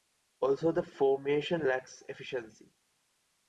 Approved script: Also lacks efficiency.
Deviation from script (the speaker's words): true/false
true